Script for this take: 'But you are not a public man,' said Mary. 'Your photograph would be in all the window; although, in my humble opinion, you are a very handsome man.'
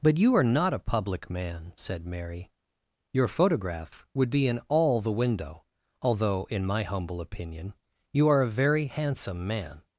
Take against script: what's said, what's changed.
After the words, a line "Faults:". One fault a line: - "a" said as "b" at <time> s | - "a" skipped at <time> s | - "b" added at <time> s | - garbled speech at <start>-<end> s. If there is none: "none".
'But you are not a public man,' said Mary. 'Your photograph would be in all the window; although, in my humble opinion, you are a very handsome man.'
Faults:
none